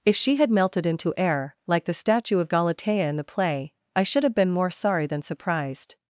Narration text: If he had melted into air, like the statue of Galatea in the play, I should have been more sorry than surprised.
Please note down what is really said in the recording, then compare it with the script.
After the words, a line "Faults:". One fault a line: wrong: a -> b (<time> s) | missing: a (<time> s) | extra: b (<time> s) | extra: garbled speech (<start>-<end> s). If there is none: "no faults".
If she had melted into air, like the statue of Galatea in the play, I should have been more sorry than surprised.
Faults:
wrong: he -> she (0.1 s)